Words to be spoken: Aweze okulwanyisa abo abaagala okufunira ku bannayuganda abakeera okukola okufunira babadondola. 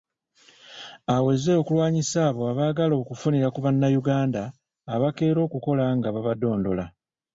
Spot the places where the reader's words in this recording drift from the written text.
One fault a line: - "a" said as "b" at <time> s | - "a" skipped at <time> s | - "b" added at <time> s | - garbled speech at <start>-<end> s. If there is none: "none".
- "okufunira" said as "nga" at 6.0 s